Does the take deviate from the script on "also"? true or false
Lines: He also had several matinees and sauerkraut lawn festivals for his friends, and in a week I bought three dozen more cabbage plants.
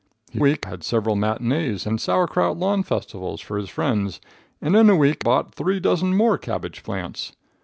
true